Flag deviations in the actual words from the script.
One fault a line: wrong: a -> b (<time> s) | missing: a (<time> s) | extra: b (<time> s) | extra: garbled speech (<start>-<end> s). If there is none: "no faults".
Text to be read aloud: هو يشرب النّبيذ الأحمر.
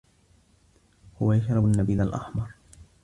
no faults